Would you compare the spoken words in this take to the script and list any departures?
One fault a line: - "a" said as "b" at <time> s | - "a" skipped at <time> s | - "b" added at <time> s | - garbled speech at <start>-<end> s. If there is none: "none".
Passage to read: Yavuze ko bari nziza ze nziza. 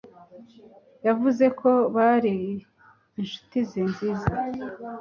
- "nziza" said as "inshuti" at 3.2 s